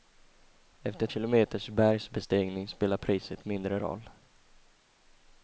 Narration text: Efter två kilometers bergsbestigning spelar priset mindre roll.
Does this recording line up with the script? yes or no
no